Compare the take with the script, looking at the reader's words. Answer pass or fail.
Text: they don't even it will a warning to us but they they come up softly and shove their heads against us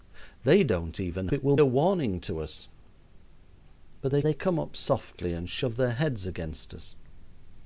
pass